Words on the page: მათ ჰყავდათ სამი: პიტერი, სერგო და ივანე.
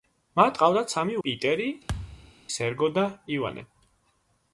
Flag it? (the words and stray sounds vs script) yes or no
yes